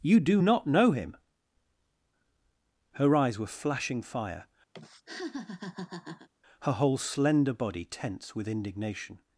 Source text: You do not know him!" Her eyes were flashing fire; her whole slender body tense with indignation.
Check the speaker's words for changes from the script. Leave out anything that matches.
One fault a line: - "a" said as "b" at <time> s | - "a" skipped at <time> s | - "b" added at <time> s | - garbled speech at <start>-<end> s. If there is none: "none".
none